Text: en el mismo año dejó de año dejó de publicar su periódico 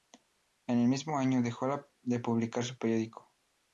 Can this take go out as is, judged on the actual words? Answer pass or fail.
fail